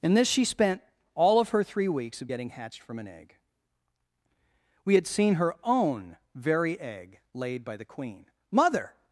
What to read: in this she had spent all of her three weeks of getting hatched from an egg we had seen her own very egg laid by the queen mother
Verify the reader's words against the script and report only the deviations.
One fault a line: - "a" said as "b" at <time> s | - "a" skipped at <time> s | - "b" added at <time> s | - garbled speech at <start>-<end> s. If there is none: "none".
- "had" skipped at 0.5 s